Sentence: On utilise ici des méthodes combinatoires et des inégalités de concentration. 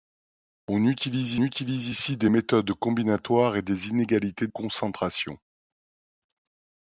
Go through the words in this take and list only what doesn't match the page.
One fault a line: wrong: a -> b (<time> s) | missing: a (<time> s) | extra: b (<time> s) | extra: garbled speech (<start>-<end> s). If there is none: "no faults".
extra: utilise (1.4 s)
missing: de (4.5 s)